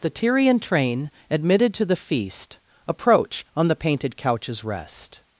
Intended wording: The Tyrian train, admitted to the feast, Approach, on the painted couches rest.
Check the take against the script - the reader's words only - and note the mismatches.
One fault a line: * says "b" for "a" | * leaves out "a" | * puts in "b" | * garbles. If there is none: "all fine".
all fine